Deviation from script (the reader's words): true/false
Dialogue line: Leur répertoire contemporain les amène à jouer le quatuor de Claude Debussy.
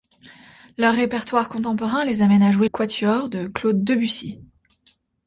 true